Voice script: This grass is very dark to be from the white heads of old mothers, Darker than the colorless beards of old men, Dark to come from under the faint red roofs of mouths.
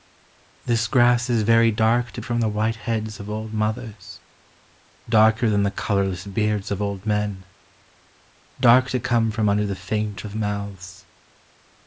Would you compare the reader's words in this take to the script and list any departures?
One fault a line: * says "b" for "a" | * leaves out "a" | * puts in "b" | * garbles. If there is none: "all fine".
* leaves out "be"
* leaves out "red roofs"